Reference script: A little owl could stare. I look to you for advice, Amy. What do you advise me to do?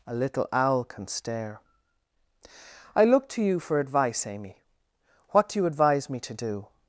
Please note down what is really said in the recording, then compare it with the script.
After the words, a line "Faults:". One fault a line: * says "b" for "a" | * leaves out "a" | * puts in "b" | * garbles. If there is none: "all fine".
A little owl can stare. I look to you for advice, Amy. What do you advise me to do?
Faults:
* says "can" for "could"